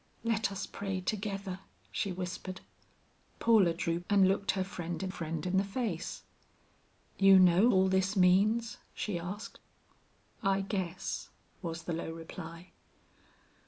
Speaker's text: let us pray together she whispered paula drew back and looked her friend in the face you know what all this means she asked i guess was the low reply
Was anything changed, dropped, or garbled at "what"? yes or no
yes